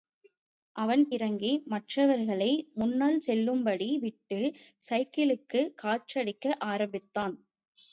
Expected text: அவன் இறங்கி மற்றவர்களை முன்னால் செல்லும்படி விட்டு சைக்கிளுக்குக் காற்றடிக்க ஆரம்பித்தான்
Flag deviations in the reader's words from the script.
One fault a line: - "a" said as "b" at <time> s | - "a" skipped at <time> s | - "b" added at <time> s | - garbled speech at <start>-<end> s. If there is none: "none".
none